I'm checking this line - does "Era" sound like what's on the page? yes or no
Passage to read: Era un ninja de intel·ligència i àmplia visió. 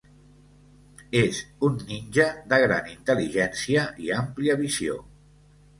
no